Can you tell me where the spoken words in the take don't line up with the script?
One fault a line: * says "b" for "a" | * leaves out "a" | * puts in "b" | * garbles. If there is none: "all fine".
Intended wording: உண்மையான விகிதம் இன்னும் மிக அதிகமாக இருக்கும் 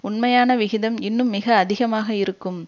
all fine